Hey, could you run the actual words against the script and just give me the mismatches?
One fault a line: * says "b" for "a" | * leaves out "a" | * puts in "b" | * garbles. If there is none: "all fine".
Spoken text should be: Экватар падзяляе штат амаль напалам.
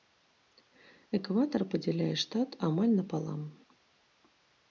all fine